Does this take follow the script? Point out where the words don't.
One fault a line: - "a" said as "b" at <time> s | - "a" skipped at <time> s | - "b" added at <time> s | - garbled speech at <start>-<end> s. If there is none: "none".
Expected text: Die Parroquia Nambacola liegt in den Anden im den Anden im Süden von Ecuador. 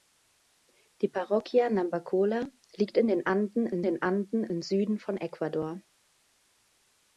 none